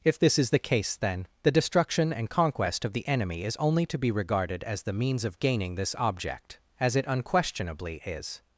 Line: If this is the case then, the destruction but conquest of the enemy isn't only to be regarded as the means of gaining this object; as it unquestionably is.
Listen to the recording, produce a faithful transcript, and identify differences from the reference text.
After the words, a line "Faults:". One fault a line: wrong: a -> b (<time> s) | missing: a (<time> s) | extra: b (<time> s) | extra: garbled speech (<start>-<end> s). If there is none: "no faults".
If this is the case then, the destruction and conquest of the enemy is only to be regarded as the means of gaining this object; as it unquestionably is.
Faults:
wrong: but -> and (2.1 s)
wrong: isn't -> is (3.4 s)